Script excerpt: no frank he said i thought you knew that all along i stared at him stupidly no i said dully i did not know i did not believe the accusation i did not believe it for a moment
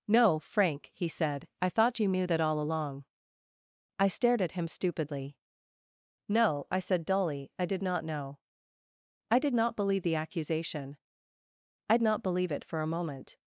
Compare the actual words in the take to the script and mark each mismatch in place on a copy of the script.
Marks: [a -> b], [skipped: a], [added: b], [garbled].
no frank he said i thought you knew that all along i stared at him stupidly no i said dully i did not know i did not believe the accusation i [skipped: did] not believe it for a moment